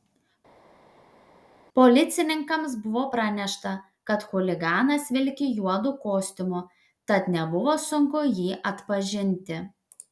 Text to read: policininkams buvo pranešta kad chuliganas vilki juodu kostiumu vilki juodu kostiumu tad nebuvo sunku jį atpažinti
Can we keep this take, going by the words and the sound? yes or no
no